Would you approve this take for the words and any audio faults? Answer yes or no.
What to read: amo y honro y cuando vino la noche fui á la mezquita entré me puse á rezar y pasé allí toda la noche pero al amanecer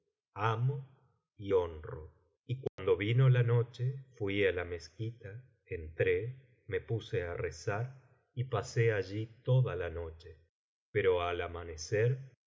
no